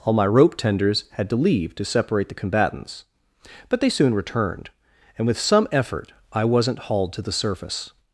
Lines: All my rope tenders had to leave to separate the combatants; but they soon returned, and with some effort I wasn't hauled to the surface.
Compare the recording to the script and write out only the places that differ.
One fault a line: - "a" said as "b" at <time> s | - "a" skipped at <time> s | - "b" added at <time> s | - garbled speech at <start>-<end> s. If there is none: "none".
none